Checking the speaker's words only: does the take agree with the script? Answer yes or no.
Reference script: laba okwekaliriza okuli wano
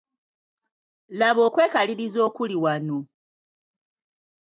yes